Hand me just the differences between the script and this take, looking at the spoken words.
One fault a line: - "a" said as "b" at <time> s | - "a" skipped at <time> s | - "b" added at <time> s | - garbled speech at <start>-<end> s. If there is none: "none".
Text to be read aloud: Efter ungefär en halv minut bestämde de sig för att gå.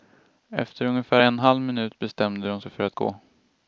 none